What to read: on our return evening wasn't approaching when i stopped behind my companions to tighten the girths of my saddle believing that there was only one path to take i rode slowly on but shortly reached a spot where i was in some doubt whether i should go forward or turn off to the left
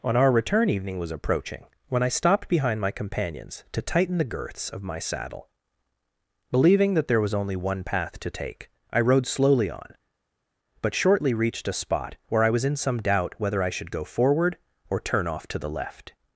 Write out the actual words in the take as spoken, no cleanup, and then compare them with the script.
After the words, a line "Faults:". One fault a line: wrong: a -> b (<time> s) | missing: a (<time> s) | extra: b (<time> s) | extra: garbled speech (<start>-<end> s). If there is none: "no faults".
on our return evening was approaching when i stopped behind my companions to tighten the girths of my saddle believing that there was only one path to take i rode slowly on but shortly reached a spot where i was in some doubt whether i should go forward or turn off to the left
Faults:
wrong: wasn't -> was (1.0 s)